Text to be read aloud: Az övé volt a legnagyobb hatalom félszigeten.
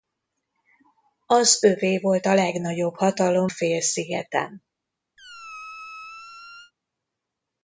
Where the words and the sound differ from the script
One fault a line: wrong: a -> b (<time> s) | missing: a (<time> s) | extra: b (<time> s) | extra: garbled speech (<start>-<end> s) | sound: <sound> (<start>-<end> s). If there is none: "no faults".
sound: squeak (5.2-6.7 s)